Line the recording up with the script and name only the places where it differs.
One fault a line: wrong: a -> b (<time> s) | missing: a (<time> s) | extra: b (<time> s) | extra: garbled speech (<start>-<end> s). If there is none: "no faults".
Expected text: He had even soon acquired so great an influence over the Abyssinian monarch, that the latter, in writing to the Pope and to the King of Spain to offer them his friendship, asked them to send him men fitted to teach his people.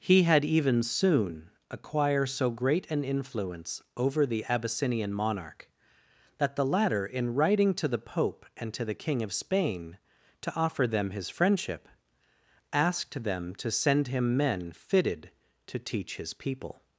wrong: acquired -> acquire (1.7 s)